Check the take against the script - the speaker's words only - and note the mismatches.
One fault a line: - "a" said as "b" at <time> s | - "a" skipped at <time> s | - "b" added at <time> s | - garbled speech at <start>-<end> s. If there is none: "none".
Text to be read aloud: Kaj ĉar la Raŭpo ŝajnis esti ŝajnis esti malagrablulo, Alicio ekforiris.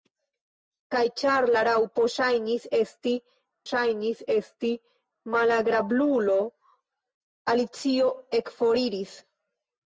none